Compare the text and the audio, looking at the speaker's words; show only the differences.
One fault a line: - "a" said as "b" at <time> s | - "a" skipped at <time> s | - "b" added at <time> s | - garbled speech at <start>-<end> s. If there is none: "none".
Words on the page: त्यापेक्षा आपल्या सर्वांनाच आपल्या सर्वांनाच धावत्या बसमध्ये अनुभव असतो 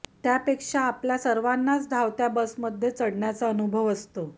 - "आपल्या सर्वांनाच" skipped at 1.9 s
- "चढण्याचा" added at 2.9 s